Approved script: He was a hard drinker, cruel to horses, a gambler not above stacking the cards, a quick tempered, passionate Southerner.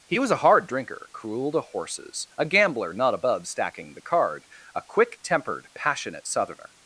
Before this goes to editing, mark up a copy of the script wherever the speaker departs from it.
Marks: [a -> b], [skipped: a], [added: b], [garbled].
He was a hard drinker, cruel to horses, a gambler not above stacking the [cards, -> card] a quick tempered, passionate Southerner.